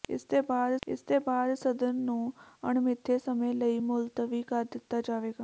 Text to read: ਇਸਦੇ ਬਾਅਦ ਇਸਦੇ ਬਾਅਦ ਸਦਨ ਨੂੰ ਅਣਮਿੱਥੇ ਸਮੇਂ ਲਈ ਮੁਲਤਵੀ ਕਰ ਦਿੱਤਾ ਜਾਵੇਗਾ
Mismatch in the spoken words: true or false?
false